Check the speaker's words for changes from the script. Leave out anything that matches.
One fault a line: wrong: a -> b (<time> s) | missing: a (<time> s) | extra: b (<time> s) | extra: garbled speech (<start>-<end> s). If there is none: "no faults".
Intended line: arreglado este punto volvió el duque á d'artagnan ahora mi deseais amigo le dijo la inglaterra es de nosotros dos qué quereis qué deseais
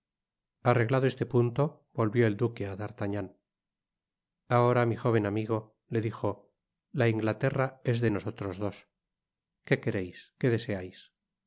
wrong: deseais -> jóven (5.0 s)